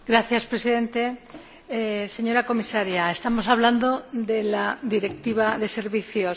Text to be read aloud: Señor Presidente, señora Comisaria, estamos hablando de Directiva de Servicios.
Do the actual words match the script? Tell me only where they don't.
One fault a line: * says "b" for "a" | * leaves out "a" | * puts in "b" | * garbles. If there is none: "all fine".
* puts in "la"